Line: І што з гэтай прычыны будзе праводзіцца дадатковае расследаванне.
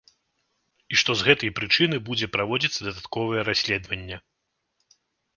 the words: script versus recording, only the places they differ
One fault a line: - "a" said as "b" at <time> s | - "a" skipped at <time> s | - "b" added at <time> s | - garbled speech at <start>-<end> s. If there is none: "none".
none